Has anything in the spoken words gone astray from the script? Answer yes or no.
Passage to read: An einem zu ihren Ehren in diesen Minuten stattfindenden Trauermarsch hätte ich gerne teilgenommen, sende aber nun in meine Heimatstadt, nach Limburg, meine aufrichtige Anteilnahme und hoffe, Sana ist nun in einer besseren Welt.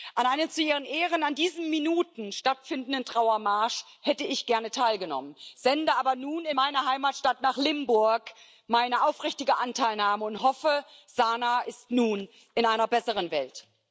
no